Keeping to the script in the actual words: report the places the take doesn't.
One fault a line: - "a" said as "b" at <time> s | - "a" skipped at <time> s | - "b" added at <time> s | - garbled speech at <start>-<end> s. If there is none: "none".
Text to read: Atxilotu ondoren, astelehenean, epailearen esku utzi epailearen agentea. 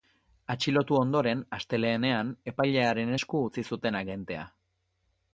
- "epailearen" said as "zuten" at 3.7 s